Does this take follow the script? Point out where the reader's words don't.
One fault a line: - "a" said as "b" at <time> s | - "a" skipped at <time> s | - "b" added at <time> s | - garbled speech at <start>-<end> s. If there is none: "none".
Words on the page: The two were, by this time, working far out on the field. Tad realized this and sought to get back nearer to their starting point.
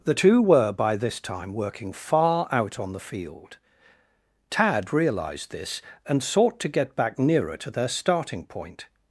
none